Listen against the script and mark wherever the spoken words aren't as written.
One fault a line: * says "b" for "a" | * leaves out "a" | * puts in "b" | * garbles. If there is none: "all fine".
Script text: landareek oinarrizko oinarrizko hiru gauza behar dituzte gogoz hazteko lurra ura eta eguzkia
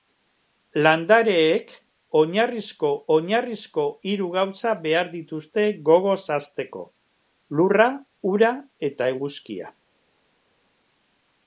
all fine